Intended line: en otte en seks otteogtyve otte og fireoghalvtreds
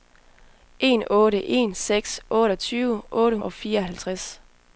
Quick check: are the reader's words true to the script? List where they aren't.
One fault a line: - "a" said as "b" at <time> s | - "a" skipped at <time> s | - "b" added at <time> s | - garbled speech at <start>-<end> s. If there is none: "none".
none